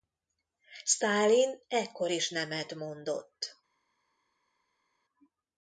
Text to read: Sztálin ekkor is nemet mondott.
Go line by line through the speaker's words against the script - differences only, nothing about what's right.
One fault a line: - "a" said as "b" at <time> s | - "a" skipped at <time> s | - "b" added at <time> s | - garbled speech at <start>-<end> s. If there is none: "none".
none